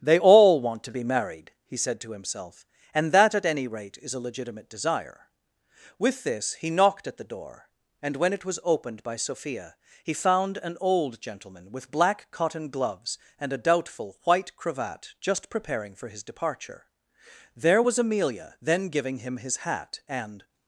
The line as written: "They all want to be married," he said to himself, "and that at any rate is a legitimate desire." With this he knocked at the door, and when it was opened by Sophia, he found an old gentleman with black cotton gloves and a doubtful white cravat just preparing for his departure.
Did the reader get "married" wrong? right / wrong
right